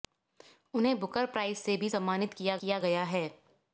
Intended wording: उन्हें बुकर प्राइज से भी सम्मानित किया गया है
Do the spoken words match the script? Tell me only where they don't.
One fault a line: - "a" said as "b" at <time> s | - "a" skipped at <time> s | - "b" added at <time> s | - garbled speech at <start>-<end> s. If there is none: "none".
- "किया" added at 2.6 s